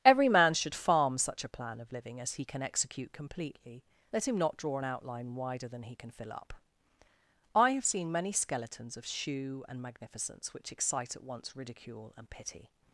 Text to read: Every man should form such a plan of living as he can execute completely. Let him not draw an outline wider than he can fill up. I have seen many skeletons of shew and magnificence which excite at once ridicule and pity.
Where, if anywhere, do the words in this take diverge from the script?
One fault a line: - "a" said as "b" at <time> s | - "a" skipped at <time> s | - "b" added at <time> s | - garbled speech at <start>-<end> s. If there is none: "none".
- "form" said as "farm" at 0.7 s